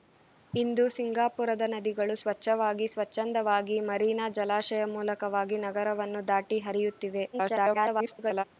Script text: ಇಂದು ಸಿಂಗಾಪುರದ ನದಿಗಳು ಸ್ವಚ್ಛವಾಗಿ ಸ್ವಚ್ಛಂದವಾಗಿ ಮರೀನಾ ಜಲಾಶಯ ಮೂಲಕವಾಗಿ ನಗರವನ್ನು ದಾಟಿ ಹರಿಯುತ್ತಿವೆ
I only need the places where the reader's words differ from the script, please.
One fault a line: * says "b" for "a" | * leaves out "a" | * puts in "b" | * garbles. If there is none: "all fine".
* garbles